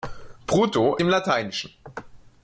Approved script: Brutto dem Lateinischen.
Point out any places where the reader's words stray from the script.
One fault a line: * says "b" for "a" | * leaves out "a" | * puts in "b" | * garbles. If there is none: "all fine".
all fine